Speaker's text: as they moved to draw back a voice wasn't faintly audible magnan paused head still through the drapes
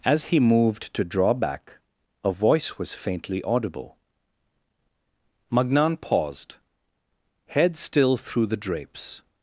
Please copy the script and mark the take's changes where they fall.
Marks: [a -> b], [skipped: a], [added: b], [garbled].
as [they -> he] moved to draw back a voice [wasn't -> was] faintly audible magnan paused head still through the drapes